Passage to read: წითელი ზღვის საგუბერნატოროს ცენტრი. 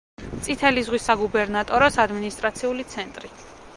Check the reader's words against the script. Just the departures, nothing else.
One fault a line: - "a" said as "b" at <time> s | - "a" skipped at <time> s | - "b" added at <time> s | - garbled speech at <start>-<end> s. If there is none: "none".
- "ადმინისტრაციული" added at 2.1 s